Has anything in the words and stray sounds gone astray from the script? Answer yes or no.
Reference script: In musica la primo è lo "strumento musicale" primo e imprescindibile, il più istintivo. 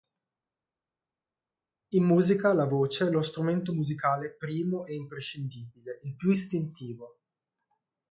yes